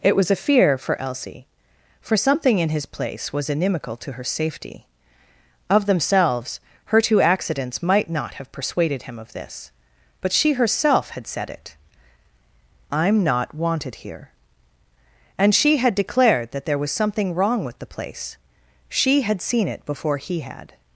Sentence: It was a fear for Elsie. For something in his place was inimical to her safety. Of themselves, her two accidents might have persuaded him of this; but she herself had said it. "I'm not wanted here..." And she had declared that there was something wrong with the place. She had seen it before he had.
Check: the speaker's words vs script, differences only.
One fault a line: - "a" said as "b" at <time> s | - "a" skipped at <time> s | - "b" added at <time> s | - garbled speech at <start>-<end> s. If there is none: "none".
- "not" added at 8.1 s